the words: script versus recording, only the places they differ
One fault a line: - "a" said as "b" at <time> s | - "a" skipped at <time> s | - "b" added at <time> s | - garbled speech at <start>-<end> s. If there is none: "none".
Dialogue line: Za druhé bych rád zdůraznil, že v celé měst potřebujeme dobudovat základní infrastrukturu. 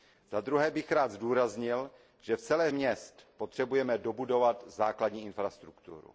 none